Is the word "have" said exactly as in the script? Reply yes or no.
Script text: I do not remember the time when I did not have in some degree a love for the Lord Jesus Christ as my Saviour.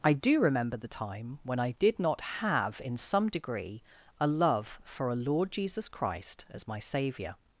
yes